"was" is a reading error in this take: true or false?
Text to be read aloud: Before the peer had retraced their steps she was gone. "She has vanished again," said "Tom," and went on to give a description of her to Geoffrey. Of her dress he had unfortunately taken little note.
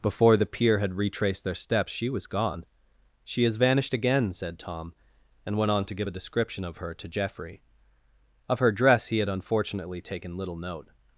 false